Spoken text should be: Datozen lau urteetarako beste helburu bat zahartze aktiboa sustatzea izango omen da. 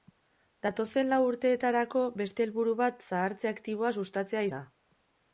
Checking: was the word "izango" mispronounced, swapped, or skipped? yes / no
yes